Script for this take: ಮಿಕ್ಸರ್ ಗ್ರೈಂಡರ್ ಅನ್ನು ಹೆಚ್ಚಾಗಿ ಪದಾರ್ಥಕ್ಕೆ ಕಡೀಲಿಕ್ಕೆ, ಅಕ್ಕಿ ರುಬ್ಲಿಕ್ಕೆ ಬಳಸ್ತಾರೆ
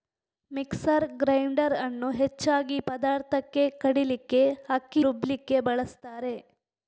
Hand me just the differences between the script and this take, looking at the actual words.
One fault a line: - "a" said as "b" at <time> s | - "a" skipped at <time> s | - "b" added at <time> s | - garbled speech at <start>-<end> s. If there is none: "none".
none